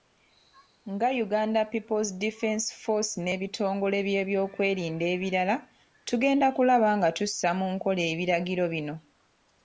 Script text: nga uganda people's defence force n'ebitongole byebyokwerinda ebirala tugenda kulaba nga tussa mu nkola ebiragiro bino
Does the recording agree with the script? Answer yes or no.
yes